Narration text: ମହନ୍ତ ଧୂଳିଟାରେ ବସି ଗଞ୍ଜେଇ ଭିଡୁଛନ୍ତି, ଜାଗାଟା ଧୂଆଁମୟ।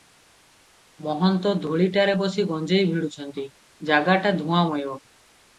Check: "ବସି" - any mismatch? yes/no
no